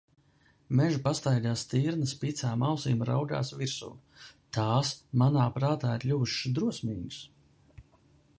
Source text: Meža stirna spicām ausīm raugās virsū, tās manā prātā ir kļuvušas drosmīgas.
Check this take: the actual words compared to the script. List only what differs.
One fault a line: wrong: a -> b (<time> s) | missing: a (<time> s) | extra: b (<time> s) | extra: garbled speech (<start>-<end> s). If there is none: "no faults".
extra: pastaigā (1.1 s)